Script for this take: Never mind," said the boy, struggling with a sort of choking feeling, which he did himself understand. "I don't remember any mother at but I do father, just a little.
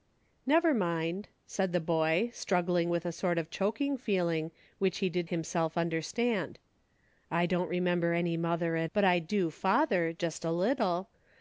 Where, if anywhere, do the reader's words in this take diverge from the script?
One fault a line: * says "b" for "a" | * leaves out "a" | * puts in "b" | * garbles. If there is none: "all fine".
all fine